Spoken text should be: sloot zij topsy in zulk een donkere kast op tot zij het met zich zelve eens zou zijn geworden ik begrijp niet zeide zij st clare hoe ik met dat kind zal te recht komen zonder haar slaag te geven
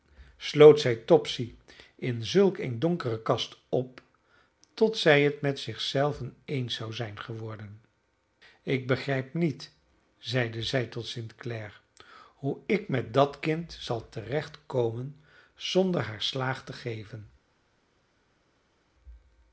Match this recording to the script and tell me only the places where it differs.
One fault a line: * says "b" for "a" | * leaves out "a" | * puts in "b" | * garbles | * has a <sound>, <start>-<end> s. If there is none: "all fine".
* puts in "tot"